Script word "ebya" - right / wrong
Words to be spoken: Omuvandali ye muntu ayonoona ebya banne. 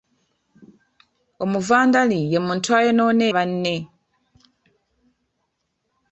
wrong